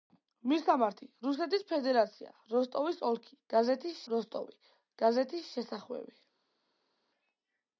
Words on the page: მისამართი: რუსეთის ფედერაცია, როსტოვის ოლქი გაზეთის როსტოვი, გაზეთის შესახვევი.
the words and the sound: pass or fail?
pass